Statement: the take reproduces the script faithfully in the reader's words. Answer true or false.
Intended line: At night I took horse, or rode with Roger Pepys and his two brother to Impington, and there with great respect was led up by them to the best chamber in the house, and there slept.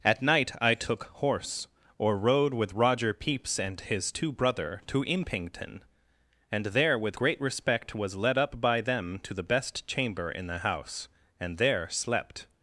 true